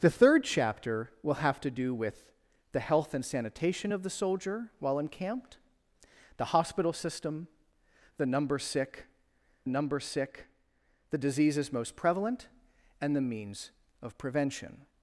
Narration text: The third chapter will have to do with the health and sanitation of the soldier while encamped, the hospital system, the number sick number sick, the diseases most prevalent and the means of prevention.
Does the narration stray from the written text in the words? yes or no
no